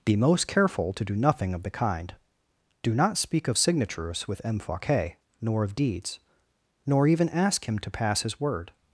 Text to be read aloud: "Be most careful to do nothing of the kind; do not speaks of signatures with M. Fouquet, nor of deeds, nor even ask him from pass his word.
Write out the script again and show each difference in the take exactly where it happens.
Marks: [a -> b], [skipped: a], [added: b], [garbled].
"Be most careful to do nothing of the kind; do not [speaks -> speak] of signatures with M. Fouquet, nor of deeds, nor even ask him [from -> to] pass his word.